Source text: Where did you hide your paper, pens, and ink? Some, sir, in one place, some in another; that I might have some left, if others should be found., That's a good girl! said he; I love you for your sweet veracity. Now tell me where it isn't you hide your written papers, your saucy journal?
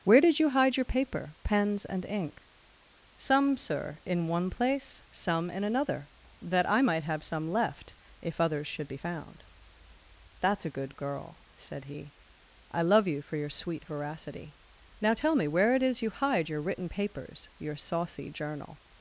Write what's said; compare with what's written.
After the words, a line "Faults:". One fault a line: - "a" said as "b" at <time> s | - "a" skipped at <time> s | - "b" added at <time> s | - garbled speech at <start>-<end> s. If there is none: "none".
Where did you hide your paper, pens, and ink? Some, sir, in one place, some in another; that I might have some left, if others should be found., That's a good girl! said he; I love you for your sweet veracity. Now tell me where it is you hide your written papers, your saucy journal?
Faults:
- "isn't" said as "is" at 15.8 s